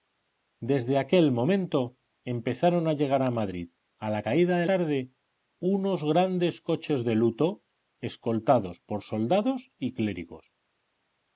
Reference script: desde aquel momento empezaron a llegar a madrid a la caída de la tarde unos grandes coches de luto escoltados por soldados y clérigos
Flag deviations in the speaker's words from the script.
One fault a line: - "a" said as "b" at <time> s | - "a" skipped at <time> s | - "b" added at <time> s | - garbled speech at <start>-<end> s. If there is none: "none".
- "la" skipped at 4.7 s